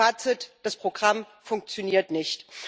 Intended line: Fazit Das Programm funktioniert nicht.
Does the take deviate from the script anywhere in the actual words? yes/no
no